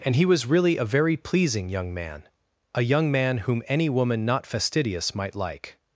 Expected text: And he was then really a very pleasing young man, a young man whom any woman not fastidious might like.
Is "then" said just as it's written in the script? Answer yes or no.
no